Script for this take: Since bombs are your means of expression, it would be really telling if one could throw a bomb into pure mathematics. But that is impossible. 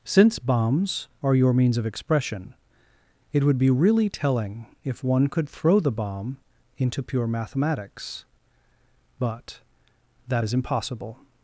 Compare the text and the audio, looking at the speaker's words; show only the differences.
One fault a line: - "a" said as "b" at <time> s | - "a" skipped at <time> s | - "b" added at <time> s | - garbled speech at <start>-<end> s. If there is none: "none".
- "a" said as "the" at 5.8 s